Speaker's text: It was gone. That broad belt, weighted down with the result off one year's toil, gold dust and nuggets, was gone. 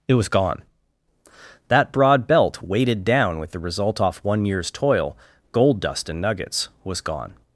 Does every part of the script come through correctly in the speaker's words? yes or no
yes